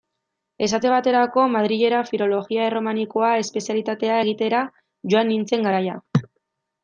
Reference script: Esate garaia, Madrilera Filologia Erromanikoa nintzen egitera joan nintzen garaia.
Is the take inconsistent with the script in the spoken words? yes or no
yes